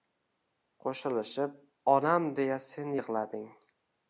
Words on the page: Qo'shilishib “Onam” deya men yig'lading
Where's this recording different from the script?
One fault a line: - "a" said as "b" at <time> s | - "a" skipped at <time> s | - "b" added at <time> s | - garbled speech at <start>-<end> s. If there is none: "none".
- "men" said as "sen" at 2.7 s